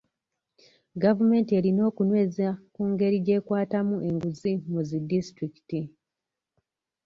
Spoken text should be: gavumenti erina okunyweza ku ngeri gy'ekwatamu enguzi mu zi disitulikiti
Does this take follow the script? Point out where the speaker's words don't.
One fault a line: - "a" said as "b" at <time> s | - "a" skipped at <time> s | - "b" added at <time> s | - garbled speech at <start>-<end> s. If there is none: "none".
none